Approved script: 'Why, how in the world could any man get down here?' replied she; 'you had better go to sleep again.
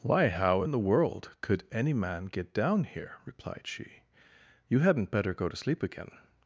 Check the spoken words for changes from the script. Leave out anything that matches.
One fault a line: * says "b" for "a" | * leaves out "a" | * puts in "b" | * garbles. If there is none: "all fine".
* says "hadn't" for "had"